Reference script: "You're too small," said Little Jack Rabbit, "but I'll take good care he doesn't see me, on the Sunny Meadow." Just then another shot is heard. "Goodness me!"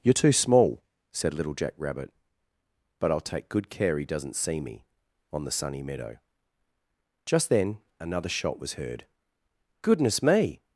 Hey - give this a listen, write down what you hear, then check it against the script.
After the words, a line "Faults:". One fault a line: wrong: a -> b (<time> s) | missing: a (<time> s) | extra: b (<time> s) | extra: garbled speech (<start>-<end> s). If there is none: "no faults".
"You're too small," said Little Jack Rabbit, "but I'll take good care he doesn't see me, on the Sunny Meadow." Just then another shot was heard. "Goodness me!"
Faults:
wrong: is -> was (8.6 s)